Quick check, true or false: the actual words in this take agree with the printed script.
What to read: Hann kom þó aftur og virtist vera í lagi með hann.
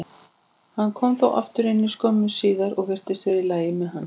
false